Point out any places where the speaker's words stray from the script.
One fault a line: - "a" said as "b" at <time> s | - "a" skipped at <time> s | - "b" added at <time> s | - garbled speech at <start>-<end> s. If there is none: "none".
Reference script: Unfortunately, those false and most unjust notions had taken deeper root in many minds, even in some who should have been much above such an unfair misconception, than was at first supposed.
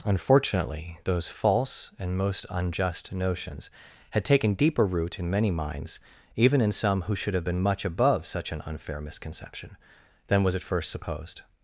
none